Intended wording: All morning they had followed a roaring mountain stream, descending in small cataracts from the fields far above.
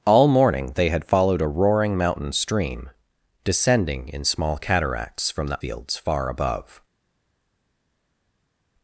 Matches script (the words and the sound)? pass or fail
pass